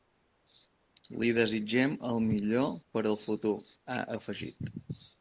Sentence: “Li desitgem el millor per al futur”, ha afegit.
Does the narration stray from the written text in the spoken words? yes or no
no